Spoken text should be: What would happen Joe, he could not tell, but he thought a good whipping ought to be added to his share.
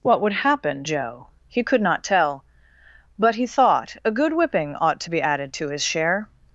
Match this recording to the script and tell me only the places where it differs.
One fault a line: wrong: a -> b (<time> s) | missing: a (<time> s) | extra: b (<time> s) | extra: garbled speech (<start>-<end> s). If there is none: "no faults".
no faults